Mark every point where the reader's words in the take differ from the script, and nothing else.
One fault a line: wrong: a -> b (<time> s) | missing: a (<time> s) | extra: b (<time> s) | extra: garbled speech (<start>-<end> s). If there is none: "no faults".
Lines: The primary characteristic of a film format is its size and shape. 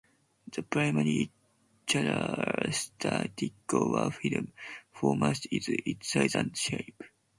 no faults